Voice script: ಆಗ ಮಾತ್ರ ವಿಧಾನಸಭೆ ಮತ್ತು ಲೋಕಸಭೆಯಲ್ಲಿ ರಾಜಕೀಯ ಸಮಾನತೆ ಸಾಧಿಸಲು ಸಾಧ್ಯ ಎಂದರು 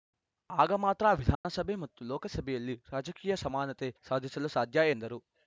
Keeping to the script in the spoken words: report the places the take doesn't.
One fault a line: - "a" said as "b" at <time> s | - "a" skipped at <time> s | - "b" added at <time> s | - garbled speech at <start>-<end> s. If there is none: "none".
none